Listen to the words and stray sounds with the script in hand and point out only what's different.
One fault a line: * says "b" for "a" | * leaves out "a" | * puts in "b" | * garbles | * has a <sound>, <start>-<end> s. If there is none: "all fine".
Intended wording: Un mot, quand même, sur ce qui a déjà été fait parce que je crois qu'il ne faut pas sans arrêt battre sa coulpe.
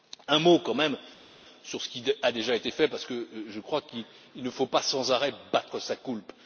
all fine